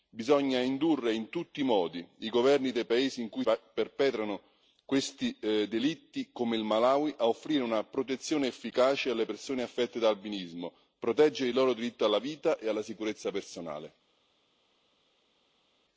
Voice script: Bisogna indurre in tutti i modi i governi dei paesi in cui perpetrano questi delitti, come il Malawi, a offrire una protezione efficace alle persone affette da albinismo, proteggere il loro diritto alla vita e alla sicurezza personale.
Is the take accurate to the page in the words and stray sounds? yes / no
yes